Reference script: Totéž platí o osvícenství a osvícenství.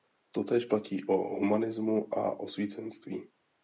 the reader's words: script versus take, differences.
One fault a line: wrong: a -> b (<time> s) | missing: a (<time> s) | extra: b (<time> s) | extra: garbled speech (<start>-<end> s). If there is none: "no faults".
wrong: osvícenství -> humanismu (1.2 s)